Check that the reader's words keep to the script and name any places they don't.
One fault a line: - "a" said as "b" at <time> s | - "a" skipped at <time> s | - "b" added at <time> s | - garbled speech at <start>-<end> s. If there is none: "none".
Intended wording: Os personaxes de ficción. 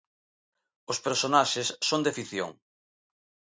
- "son" added at 1.9 s